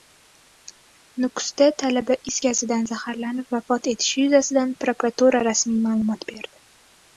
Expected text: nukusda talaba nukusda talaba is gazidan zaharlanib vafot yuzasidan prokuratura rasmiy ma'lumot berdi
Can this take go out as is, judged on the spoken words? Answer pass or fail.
fail